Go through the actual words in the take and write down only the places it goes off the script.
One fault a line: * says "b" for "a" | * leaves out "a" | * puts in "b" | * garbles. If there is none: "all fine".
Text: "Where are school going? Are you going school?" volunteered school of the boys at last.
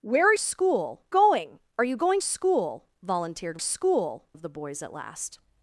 all fine